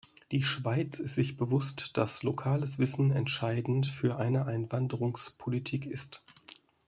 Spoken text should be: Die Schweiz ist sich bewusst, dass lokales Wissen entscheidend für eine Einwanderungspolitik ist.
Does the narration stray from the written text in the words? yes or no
no